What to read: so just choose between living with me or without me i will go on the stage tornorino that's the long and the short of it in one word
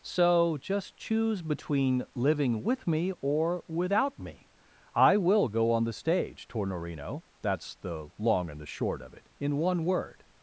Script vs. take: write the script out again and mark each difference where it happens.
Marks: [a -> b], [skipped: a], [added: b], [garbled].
so just choose between living with me or without me i will go on the stage tornorino that's the long and the short of it in one word